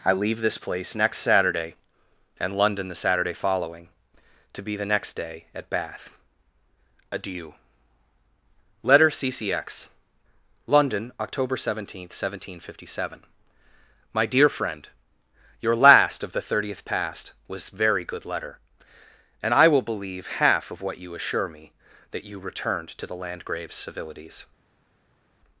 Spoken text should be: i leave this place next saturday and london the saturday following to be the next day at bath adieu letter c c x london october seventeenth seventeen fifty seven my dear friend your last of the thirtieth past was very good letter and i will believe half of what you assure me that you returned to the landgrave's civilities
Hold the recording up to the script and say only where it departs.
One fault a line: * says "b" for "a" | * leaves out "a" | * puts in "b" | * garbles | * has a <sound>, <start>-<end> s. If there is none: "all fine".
all fine